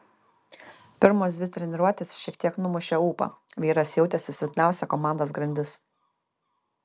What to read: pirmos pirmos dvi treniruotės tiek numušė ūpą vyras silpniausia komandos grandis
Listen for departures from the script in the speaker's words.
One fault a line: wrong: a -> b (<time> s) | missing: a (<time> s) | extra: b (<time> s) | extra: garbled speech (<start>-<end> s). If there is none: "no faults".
missing: pirmos (1.4 s)
extra: šiek (2.2 s)
extra: jautėsi (4.0 s)